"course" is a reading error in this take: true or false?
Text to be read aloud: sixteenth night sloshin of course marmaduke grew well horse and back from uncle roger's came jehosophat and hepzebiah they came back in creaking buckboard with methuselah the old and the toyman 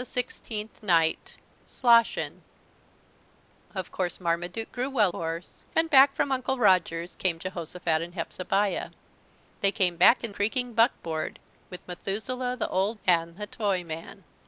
false